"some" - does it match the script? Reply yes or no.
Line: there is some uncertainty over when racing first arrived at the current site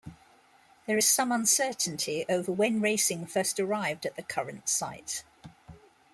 yes